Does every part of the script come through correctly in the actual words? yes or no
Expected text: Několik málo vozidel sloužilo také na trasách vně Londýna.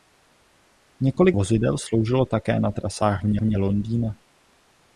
no